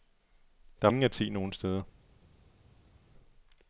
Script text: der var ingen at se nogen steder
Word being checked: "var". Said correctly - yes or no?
no